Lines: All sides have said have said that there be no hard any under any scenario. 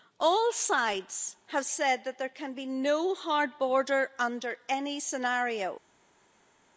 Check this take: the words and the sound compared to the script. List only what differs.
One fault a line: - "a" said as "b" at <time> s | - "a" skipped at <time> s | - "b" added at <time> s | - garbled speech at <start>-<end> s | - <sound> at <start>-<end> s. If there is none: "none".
- "have said" skipped at 2.0 s
- "can" added at 2.3 s
- "any" said as "border" at 3.6 s